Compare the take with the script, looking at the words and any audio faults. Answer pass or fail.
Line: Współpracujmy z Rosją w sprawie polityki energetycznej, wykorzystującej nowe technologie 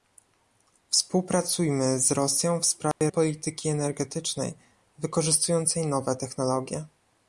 fail